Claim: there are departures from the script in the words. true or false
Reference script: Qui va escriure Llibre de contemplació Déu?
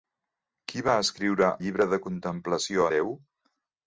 false